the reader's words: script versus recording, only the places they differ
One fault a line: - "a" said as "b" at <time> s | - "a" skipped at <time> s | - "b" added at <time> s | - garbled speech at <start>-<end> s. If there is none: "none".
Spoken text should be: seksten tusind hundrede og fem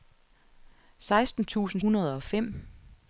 none